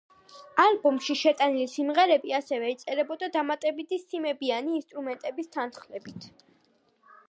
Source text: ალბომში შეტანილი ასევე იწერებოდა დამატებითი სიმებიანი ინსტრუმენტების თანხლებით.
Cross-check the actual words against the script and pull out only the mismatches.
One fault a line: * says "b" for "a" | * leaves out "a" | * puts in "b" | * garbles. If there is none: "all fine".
* puts in "სიმღერები"